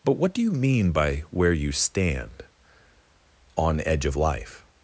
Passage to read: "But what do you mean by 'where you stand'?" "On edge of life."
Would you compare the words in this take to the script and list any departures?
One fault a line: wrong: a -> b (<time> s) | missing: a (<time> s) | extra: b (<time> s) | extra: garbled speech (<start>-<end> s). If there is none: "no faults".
no faults